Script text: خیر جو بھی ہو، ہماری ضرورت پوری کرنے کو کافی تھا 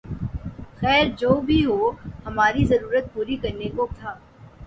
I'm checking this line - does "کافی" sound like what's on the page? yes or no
no